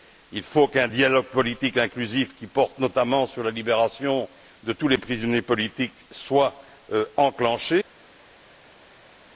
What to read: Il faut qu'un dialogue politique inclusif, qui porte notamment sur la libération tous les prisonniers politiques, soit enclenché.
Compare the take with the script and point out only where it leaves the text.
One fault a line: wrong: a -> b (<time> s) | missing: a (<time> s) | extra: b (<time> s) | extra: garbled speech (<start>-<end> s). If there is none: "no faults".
extra: de (4.6 s)